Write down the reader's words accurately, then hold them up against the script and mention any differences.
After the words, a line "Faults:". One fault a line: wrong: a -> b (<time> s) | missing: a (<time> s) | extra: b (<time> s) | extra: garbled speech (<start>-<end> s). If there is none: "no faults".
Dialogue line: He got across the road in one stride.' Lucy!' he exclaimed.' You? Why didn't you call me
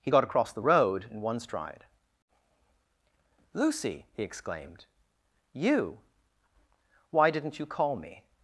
He got across the road in one stride.' Lucy!' he exclaimed.' You? Why didn't you call me
Faults:
no faults